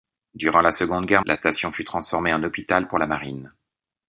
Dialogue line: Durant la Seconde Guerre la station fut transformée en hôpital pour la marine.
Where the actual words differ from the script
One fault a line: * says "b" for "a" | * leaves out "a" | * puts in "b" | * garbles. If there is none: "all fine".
all fine